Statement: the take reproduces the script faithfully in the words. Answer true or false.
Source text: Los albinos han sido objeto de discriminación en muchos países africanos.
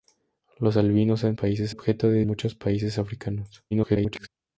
false